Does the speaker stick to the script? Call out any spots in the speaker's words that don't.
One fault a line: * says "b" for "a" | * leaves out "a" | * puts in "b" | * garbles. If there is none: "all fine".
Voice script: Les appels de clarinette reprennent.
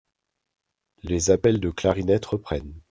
all fine